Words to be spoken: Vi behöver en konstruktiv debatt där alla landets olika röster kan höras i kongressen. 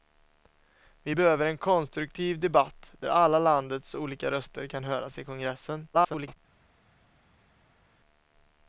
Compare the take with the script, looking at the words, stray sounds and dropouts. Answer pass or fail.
fail